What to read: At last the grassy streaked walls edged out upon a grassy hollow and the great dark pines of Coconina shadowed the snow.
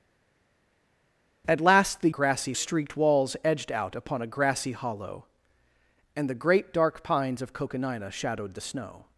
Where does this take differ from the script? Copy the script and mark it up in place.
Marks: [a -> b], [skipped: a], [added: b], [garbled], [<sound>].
At last the grassy streaked walls edged out upon a grassy hollow and the great dark pines of Coconina shadowed the snow.